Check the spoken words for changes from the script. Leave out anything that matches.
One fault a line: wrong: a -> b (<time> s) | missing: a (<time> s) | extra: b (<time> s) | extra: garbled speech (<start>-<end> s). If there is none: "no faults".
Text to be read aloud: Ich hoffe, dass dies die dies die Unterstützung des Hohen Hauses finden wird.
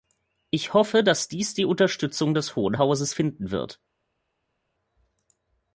missing: dies die (1.7 s)